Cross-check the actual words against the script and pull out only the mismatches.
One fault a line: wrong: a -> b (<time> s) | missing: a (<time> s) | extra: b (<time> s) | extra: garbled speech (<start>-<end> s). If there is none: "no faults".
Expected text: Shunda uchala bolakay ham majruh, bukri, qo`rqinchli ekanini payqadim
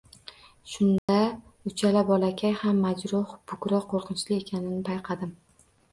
no faults